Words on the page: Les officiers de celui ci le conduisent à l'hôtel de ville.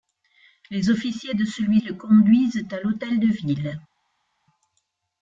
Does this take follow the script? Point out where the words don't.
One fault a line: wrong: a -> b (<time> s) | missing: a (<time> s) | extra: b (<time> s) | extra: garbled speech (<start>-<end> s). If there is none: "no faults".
missing: ci (1.8 s)